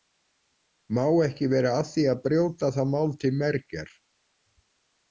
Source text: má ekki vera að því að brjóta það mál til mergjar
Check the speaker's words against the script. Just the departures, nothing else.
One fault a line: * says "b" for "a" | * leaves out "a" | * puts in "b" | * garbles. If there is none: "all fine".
all fine